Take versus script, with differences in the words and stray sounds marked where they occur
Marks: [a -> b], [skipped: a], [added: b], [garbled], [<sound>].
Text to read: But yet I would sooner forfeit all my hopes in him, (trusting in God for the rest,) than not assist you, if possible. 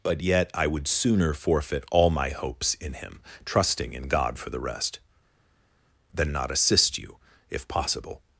But yet I would sooner forfeit all my hopes in him, (trusting in God for the rest,) than not assist you, if possible.